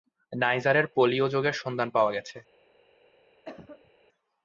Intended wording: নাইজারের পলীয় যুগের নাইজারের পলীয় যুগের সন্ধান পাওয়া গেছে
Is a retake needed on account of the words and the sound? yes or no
yes